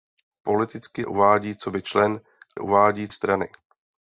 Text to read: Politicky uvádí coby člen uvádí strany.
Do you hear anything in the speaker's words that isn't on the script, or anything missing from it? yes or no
no